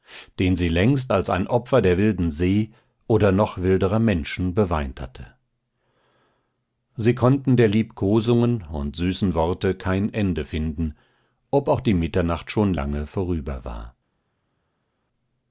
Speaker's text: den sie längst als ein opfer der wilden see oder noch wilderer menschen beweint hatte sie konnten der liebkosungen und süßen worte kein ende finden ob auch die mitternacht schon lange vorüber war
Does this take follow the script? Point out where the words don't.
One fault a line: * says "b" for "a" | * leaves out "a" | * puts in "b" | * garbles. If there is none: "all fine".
all fine